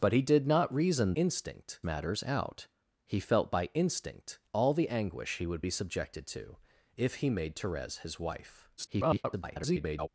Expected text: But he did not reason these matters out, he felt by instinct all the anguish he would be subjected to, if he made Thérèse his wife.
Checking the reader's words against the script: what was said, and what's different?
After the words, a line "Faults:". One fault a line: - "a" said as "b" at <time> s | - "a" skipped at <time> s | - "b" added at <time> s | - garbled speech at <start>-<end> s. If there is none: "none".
But he did not reason instinct matters out, he felt by instinct all the anguish he would be subjected to, if he made Thérèse his wife. [garbled]
Faults:
- "these" said as "instinct" at 1.2 s
- garbled speech at 8.8-10.1 s